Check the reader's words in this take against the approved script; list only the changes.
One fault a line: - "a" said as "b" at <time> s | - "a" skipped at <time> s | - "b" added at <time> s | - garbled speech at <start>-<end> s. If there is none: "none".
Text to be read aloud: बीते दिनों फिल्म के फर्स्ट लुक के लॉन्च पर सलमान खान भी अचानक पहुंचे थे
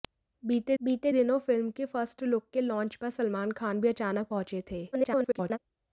- "बीते" added at 0.8 s
- garbled speech at 4.9-5.6 s